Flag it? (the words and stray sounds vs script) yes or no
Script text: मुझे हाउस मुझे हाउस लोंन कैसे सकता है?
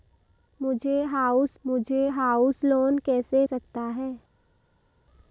no